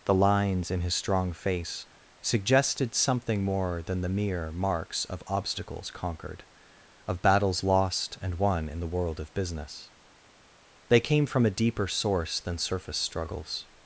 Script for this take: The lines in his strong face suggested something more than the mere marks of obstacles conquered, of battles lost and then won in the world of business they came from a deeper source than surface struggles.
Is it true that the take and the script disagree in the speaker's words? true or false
true